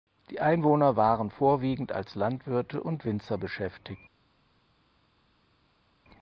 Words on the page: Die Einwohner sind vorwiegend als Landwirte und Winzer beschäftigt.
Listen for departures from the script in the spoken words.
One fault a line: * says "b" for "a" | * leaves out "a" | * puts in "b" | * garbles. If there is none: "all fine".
* says "waren" for "sind"